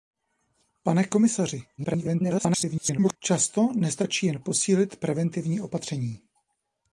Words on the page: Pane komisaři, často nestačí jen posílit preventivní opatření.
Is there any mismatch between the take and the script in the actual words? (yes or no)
yes